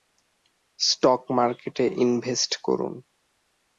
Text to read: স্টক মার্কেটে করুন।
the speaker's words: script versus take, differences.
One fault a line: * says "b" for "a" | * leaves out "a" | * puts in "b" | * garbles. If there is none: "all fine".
* puts in "ইনভেস্ট"